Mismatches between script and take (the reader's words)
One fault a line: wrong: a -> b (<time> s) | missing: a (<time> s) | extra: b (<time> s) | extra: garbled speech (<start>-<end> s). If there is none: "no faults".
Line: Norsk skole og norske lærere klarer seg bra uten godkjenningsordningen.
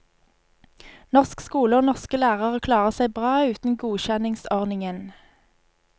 no faults